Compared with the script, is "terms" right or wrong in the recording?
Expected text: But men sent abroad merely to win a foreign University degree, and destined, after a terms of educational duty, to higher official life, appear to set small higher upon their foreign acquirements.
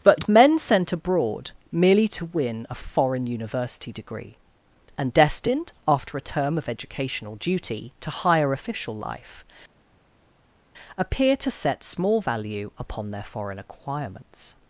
wrong